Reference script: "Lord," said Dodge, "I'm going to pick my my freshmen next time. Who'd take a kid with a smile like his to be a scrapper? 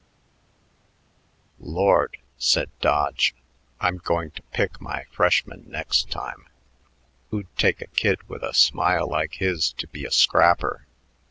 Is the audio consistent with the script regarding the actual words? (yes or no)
no